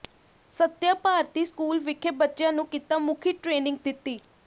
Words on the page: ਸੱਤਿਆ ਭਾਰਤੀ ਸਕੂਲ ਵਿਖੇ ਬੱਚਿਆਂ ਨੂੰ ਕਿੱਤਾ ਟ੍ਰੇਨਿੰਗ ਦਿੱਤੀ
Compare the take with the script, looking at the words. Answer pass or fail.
fail